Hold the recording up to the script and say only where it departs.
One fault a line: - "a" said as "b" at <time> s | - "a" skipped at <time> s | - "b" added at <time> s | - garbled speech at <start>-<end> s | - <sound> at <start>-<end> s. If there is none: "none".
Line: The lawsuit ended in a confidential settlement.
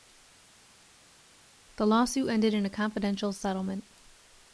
none